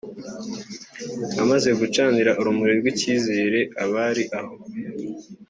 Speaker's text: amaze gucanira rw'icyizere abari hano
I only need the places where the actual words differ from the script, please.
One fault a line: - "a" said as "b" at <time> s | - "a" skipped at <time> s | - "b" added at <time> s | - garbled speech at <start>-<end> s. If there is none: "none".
- "urumuri" added at 2.4 s
- "hano" said as "aho" at 4.4 s